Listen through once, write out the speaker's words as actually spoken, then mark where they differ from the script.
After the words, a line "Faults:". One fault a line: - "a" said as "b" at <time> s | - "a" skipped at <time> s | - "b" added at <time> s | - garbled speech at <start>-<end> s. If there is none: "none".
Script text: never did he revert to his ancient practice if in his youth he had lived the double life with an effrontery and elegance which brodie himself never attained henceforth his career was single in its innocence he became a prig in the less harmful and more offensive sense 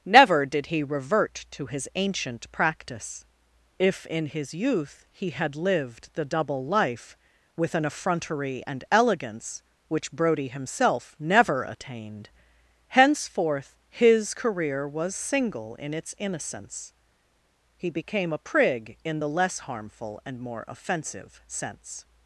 never did he revert to his ancient practice if in his youth he had lived the double life with an effrontery and elegance which brodie himself never attained henceforth his career was single in its innocence he became a prig in the less harmful and more offensive sense
Faults:
none